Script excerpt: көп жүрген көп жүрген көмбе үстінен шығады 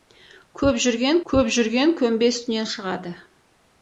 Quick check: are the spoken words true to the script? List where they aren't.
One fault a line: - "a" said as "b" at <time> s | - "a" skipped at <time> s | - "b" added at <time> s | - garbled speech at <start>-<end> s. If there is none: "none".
none